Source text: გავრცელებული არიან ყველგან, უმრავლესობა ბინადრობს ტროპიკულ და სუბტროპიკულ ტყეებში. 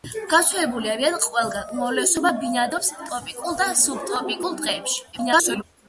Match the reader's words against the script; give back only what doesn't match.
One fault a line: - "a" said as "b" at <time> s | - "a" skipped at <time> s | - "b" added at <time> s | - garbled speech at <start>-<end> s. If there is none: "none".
- garbled speech at 5.1-5.6 s